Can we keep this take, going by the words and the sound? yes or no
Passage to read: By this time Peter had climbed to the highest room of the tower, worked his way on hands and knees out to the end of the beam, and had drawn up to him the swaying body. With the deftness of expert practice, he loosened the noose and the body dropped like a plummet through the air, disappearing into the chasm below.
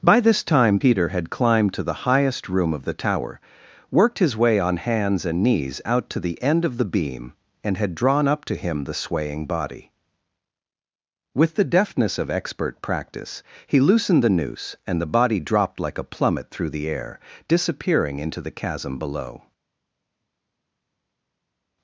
yes